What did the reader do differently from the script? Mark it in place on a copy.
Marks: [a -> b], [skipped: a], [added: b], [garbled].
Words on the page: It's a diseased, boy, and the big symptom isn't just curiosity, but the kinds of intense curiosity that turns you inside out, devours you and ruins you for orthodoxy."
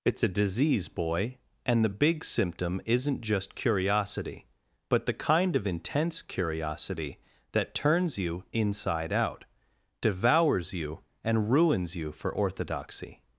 It's a [diseased, -> disease] boy, and the big symptom isn't just curiosity, but the [kinds -> kind] of intense curiosity that turns you inside out, devours you and ruins you for orthodoxy."